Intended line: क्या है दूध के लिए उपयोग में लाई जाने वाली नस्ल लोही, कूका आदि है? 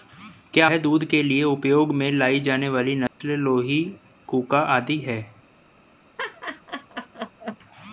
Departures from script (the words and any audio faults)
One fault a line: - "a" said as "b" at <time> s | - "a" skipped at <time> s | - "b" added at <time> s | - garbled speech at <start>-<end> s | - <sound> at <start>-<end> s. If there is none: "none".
- dropout at 3.1-3.2 s
- laugh at 6.2-7.6 s